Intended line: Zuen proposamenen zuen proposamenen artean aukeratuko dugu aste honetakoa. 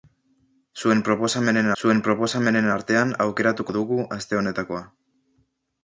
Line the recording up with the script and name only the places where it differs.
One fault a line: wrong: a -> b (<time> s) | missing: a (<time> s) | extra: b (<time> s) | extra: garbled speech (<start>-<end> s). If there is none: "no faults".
no faults